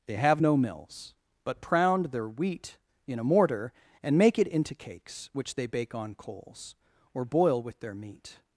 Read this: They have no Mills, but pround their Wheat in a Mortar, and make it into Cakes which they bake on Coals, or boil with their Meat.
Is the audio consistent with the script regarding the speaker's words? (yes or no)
yes